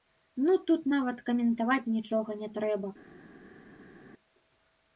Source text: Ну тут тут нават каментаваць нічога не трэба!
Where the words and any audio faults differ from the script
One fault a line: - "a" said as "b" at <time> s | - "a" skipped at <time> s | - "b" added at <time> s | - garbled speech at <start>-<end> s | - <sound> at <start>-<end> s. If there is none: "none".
- "тут" skipped at 0.9 s